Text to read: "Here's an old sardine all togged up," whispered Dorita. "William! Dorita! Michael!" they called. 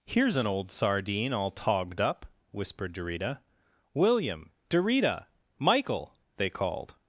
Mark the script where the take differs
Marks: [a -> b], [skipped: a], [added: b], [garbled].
"Here's an old sardine all togged up," whispered Dorita. "William! Dorita! Michael!" they called.